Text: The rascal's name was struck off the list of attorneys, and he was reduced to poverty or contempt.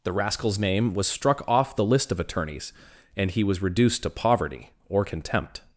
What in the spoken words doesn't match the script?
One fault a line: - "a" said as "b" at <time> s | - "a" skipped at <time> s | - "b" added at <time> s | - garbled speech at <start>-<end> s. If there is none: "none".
none